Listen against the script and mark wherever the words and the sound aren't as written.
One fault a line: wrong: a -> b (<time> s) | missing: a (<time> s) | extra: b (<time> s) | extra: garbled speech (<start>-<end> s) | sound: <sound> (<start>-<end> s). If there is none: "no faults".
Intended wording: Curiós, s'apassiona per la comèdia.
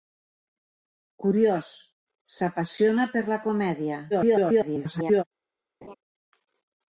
extra: garbled speech (4.1-5.2 s)
sound: laugh (5.8-5.9 s)